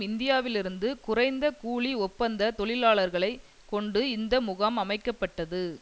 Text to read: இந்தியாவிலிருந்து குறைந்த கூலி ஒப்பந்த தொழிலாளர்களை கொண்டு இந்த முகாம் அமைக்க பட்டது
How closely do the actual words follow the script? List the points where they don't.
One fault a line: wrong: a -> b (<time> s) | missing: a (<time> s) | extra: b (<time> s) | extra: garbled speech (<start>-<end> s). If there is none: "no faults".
no faults